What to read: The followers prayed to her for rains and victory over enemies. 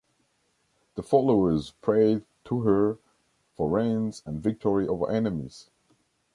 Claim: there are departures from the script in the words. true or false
false